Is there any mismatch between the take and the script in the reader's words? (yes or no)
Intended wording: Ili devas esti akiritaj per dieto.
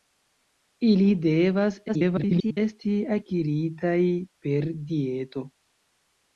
yes